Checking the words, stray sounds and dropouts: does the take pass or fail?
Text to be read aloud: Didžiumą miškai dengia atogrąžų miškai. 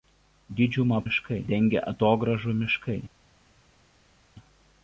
pass